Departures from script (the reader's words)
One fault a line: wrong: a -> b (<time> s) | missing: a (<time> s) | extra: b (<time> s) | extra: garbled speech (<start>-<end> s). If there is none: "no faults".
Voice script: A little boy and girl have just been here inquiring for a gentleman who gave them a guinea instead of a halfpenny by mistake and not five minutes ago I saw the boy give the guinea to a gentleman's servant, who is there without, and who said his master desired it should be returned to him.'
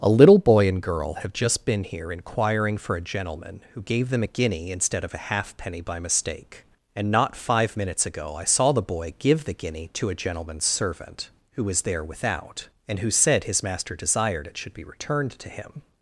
wrong: is -> was (11.6 s)